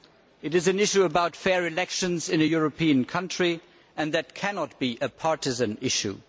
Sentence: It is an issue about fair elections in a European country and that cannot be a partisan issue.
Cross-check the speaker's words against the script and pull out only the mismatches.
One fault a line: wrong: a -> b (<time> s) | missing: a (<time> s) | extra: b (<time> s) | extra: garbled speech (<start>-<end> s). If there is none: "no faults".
no faults